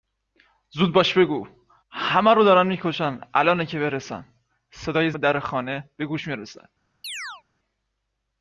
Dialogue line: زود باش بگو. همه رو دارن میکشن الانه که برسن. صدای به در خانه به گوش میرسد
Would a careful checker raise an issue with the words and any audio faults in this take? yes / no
yes